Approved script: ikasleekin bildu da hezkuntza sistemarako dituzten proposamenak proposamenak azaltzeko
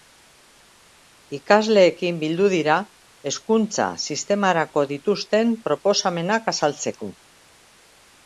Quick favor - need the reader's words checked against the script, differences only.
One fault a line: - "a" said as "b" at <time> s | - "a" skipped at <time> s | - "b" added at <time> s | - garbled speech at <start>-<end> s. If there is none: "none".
- "da" said as "dira" at 2.5 s
- "proposamenak" skipped at 6.5 s